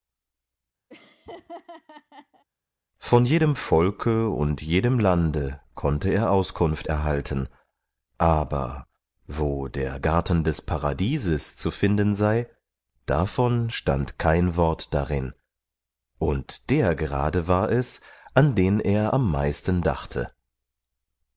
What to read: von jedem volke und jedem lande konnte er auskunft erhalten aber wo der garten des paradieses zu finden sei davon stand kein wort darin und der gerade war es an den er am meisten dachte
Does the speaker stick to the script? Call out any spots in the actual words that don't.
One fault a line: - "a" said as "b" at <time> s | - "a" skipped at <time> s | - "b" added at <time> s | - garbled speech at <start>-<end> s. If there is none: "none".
none